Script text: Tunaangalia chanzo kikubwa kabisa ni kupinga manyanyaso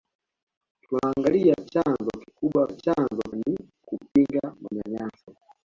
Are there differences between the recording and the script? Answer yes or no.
yes